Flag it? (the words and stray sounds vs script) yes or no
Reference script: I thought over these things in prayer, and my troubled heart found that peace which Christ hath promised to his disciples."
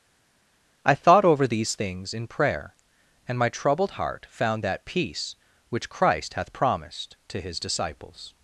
no